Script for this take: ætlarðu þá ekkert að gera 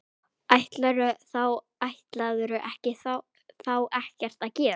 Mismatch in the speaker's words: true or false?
false